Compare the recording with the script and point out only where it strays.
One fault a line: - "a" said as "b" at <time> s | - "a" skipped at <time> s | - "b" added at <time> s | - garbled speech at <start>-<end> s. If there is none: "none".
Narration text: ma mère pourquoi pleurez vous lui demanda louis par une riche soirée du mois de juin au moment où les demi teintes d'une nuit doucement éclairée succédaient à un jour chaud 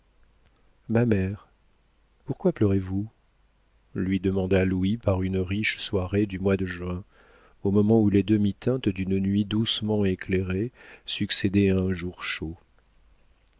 none